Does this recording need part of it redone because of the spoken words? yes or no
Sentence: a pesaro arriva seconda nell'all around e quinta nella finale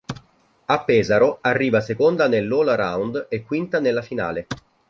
no